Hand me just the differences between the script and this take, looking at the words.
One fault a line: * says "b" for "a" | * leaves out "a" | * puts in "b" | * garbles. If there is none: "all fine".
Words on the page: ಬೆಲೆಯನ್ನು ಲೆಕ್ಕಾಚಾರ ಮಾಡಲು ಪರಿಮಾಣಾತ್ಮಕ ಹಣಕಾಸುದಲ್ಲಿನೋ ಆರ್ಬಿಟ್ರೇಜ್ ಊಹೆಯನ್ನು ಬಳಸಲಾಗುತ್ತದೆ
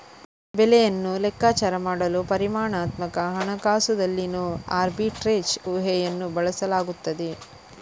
all fine